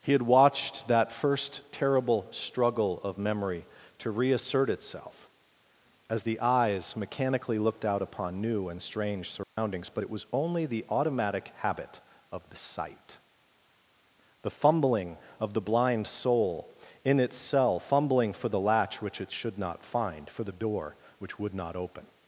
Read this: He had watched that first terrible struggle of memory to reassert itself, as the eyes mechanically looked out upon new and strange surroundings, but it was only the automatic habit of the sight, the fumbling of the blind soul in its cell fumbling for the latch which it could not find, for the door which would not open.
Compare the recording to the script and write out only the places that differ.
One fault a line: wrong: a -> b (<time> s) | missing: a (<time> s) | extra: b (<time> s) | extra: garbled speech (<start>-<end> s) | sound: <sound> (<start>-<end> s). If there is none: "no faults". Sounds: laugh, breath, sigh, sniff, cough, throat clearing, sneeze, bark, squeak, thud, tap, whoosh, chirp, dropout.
sound: dropout (9.4-9.6 s)
wrong: could -> should (19.3 s)